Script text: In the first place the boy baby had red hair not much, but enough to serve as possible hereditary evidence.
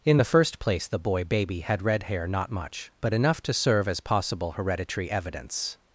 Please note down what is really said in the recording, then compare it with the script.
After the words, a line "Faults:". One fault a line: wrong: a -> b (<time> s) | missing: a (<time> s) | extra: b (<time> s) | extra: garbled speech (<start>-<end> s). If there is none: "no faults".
In the first place the boy baby had red hair not much, but enough to serve as possible hereditary evidence.
Faults:
no faults